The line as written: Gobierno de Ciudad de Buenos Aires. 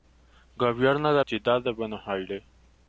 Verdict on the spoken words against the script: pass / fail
pass